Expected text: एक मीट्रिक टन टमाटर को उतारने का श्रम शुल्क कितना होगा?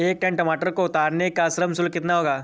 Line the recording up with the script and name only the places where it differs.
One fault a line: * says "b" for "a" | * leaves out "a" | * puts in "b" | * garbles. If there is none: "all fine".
* leaves out "मीट्रिक"